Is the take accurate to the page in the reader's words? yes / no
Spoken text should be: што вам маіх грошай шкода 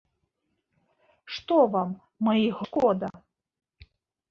no